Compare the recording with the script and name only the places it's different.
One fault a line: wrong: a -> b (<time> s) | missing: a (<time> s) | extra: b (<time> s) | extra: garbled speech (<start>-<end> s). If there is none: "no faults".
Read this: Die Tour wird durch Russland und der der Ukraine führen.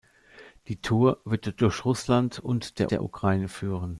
no faults